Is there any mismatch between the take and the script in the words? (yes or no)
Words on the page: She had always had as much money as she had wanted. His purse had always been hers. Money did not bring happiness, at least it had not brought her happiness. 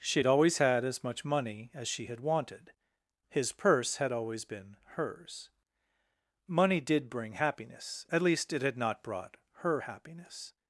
yes